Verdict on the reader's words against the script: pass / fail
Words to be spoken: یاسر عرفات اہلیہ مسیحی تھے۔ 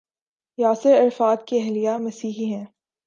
fail